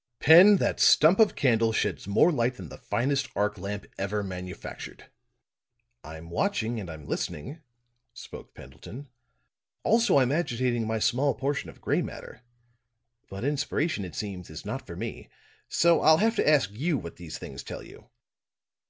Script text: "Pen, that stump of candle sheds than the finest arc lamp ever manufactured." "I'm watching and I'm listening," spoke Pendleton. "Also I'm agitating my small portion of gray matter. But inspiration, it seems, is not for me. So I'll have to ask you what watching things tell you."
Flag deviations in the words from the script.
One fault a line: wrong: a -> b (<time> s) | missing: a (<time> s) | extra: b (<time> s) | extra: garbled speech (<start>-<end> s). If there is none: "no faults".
extra: more light (2.1 s)
wrong: watching -> these (17.2 s)